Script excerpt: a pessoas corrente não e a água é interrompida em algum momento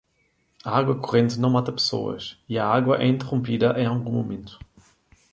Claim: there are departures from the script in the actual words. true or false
true